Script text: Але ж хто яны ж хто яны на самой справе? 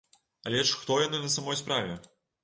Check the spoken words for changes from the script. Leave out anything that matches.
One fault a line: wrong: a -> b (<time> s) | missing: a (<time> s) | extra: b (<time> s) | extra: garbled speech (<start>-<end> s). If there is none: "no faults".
missing: ж хто яны (1.2 s)